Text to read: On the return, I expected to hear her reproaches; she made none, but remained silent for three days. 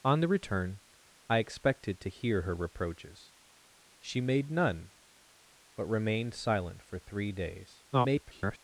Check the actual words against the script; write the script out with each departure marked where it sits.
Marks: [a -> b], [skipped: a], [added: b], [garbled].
On the return, I expected to hear her reproaches; she made none, but remained silent for three days. [garbled]